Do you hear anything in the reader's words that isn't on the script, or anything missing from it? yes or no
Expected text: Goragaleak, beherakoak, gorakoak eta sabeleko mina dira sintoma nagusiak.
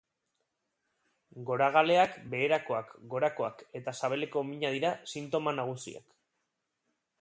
no